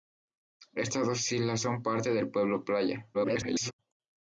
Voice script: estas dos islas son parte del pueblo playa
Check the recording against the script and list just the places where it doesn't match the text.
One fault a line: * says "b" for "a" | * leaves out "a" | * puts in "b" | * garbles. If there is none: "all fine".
* garbles